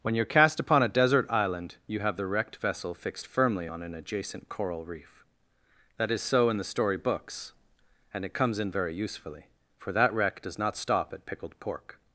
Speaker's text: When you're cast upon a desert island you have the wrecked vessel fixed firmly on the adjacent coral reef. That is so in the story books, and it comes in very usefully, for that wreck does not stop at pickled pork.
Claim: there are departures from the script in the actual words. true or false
true